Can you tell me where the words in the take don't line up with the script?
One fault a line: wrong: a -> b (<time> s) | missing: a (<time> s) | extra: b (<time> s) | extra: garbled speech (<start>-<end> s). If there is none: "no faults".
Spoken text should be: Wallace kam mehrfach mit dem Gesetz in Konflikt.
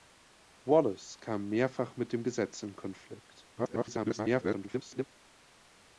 extra: garbled speech (3.6-5.1 s)